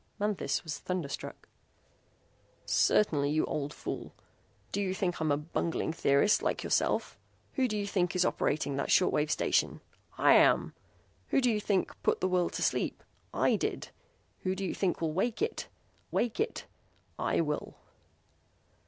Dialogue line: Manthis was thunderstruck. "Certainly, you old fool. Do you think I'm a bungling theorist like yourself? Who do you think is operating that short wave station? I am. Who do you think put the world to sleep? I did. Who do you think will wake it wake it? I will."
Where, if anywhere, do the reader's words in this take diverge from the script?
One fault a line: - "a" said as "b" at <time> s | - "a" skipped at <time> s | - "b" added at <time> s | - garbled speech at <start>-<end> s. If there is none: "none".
none